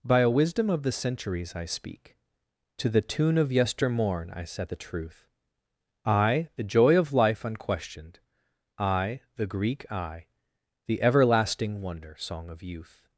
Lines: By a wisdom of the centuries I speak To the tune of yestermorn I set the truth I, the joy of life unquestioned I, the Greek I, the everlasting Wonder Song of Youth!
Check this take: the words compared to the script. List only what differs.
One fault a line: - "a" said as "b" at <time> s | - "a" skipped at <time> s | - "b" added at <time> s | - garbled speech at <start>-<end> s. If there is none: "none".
none